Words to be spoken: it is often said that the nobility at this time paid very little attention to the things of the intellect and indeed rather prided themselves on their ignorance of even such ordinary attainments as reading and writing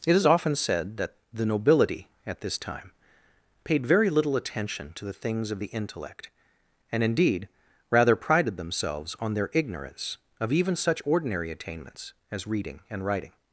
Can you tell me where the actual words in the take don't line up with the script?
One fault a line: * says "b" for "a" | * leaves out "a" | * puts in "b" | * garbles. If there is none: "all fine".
all fine